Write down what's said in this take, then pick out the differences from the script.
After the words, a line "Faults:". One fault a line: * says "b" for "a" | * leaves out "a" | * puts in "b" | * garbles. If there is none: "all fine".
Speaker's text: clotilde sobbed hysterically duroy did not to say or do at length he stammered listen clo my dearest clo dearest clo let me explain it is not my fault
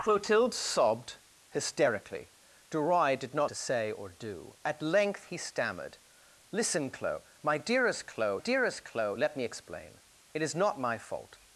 clotilde sobbed hysterically duroy did not to say or do at length he stammered listen clo my dearest clo dearest clo let me explain it is not my fault
Faults:
all fine